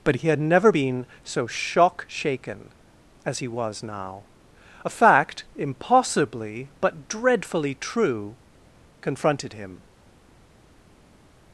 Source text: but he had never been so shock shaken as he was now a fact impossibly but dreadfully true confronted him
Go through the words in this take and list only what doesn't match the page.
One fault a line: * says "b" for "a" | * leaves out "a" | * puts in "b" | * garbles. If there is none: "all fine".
all fine